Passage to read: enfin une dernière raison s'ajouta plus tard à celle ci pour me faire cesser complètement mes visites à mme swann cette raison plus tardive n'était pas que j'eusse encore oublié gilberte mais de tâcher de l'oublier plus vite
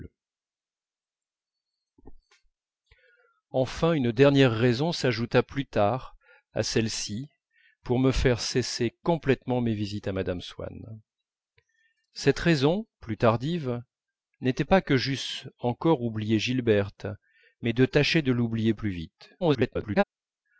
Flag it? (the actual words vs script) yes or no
yes